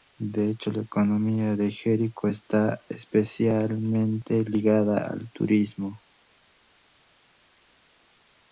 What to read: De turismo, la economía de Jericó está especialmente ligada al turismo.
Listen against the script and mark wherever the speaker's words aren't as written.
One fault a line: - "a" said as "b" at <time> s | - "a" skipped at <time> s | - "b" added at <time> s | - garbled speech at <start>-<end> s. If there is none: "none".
- "turismo" said as "hecho" at 0.5 s